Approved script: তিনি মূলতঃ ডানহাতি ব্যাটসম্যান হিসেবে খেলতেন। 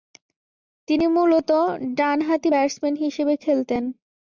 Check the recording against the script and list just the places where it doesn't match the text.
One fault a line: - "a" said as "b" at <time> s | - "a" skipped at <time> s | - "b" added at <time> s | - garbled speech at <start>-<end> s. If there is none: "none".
none